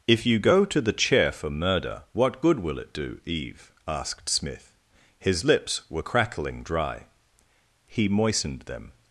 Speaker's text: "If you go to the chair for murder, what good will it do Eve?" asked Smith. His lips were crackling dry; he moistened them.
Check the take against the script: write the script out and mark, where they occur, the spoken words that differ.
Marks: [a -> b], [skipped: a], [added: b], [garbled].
"If you go to the chair for murder, what good will it do Eve?" asked Smith. His lips were crackling dry; he moistened them.